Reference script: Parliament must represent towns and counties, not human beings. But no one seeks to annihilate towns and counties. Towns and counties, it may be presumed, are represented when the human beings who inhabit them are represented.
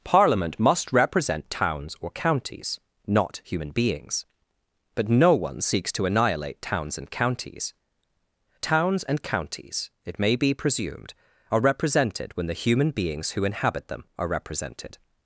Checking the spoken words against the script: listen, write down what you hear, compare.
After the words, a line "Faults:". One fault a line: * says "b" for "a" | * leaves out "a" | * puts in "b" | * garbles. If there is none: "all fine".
Parliament must represent towns or counties, not human beings. But no one seeks to annihilate towns and counties. Towns and counties, it may be presumed, are represented when the human beings who inhabit them are represented.
Faults:
* says "or" for "and"